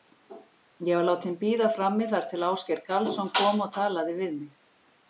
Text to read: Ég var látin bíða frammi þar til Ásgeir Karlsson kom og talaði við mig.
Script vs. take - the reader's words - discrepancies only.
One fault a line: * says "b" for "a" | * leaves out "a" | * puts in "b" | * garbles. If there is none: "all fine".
all fine